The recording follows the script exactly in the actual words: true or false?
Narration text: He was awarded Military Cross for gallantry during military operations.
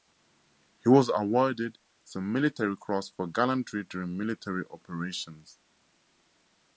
false